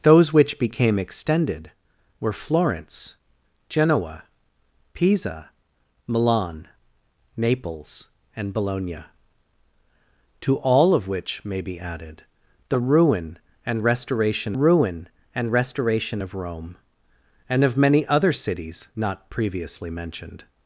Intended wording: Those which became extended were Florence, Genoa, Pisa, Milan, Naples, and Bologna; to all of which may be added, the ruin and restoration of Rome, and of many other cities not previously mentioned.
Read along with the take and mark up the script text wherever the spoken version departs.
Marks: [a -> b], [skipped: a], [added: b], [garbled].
Those which became extended were Florence, Genoa, Pisa, Milan, Naples, and Bologna; to all of which may be added, the ruin and restoration [added: ruin and restoration] of Rome, and of many other cities not previously mentioned.